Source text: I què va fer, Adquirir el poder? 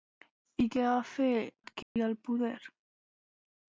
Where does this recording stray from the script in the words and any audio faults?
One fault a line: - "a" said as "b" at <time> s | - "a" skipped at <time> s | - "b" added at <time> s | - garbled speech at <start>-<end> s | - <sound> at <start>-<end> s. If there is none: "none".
- dropout at 1.8-2.0 s